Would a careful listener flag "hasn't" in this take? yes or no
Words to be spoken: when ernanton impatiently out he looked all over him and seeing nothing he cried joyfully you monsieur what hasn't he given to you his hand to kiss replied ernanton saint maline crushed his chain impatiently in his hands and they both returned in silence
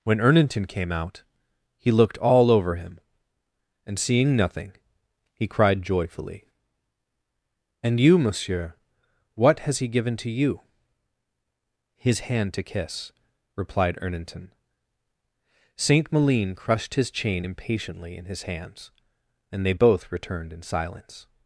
yes